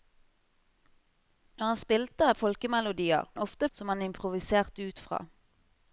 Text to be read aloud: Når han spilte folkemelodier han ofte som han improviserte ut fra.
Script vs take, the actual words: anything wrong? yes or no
no